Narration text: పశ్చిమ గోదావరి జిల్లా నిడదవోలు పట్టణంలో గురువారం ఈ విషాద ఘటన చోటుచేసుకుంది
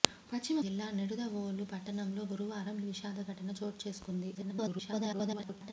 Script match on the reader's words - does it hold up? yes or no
no